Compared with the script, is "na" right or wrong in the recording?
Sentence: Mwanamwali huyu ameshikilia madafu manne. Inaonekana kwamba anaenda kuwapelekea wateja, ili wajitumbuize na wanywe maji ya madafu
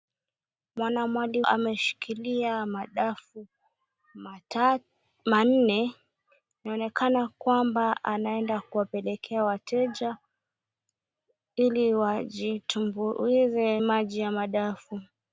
wrong